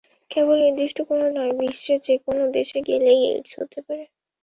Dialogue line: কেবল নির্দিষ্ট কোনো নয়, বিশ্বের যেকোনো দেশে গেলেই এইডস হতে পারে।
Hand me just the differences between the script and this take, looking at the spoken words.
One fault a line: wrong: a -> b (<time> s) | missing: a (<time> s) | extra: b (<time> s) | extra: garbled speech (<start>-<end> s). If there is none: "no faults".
no faults